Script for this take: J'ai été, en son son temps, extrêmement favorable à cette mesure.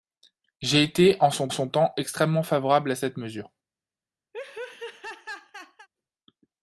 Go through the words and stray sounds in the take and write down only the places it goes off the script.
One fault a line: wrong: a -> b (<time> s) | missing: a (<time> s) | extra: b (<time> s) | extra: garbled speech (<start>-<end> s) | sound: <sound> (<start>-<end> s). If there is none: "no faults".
sound: laugh (4.3-5.9 s)